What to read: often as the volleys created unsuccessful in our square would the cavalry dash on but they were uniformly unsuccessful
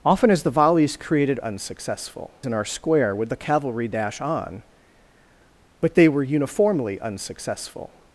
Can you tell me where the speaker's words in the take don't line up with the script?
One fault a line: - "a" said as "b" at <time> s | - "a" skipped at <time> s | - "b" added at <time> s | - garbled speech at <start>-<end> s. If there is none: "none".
none